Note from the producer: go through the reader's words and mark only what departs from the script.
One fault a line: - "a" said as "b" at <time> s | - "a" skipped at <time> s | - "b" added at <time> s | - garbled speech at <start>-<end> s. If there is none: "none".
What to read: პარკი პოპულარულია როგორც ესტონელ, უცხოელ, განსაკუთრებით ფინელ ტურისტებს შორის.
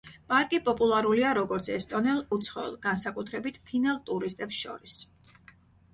none